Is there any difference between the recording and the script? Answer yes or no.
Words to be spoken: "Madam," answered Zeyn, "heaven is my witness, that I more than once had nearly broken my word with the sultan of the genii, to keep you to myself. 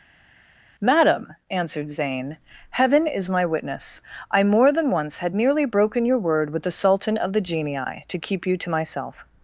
yes